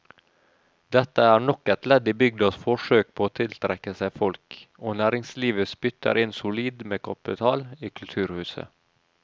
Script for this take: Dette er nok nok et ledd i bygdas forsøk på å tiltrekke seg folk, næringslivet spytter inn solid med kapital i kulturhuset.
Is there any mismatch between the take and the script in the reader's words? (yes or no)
yes